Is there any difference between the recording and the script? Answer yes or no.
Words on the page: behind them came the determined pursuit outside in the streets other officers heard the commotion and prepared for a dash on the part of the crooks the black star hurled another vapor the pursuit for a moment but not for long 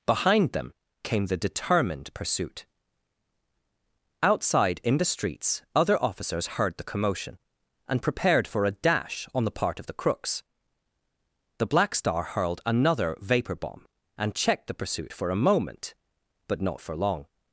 yes